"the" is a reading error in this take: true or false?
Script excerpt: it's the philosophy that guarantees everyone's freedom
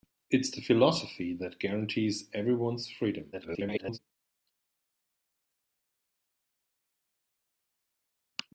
false